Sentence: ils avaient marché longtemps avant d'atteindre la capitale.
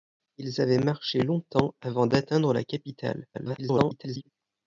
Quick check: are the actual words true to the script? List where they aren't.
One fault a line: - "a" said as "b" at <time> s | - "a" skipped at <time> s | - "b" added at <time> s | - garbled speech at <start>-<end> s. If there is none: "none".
- garbled speech at 3.3-4.3 s